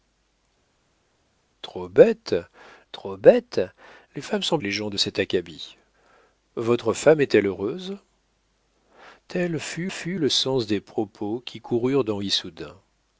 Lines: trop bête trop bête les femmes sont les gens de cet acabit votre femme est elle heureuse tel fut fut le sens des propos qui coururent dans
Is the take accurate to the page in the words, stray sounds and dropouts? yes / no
yes